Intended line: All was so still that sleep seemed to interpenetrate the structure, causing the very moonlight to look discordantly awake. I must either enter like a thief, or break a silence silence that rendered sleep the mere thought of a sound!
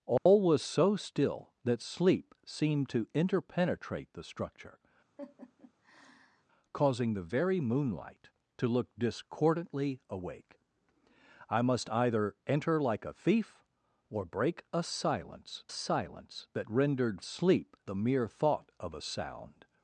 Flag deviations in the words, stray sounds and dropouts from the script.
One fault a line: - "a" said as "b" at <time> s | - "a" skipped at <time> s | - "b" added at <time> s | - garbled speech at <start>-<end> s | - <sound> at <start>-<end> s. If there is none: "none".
- dropout at 0.2-0.3 s
- laugh at 5.2-6.5 s